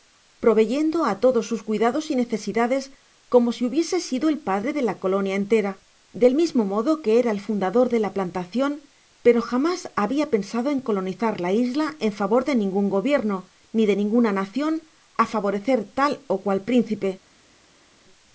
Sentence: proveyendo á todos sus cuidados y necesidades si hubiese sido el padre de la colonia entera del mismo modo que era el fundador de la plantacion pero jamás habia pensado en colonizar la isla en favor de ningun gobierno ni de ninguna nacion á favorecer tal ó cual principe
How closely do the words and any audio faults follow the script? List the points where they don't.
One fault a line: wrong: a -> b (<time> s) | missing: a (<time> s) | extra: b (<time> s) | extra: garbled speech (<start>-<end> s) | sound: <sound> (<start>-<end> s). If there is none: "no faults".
extra: como (3.3 s)